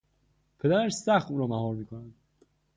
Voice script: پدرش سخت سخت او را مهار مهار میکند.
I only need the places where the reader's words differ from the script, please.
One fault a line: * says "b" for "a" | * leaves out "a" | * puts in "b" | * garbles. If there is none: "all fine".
* leaves out "سخت"
* leaves out "مهار"